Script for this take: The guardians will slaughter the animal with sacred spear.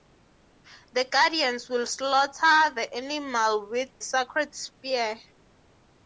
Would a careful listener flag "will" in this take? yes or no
no